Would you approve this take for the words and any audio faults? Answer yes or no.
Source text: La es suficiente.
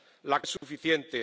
no